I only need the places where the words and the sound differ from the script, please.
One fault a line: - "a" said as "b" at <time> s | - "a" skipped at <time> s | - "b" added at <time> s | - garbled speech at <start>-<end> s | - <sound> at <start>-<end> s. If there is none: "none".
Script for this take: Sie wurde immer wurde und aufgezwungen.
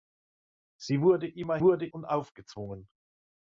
none